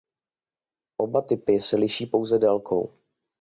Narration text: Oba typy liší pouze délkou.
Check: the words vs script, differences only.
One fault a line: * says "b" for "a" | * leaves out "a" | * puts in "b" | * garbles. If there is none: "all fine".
* puts in "se"